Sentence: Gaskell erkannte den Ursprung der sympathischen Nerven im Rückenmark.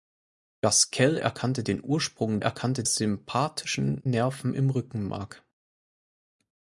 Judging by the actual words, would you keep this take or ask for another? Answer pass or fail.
fail